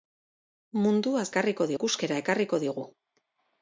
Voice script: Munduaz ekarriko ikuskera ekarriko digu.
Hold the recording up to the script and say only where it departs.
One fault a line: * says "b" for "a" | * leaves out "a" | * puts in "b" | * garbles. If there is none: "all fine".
all fine